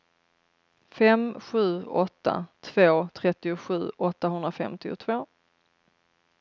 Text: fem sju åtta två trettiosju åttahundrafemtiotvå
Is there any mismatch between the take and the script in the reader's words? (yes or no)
no